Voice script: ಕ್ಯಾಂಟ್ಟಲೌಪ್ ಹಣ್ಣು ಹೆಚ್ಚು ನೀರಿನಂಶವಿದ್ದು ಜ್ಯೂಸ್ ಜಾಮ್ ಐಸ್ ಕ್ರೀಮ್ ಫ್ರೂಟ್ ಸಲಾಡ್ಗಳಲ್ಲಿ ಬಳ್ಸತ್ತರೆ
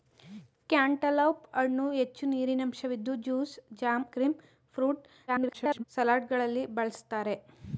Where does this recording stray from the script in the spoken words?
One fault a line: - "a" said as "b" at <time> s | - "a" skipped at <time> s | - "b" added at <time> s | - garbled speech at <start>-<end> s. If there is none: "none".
- "ಐಸ್" skipped at 4.0 s
- garbled speech at 5.3-5.8 s